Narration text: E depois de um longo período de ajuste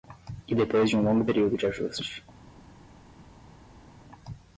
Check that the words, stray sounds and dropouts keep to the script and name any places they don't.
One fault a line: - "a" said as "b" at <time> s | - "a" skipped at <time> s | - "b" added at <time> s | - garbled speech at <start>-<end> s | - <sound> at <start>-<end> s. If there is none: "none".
none